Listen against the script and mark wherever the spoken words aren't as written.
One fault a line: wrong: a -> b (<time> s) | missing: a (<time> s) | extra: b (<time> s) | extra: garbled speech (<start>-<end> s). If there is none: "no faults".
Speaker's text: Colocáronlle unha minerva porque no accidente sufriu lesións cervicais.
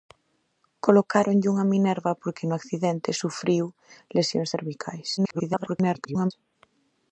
extra: garbled speech (5.2-6.3 s)